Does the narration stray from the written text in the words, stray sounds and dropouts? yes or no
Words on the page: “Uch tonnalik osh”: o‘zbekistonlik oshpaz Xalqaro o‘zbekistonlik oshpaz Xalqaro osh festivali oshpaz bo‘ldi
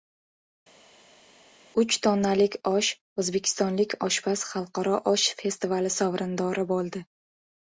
yes